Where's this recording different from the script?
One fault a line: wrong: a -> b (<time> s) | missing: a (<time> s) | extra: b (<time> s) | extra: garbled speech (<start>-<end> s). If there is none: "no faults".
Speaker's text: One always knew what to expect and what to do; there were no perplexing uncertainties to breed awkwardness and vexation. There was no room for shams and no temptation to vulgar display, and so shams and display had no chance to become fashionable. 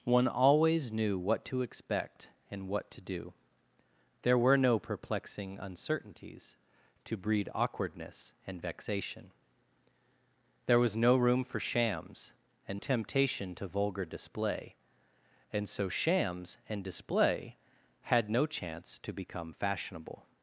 missing: no (12.8 s)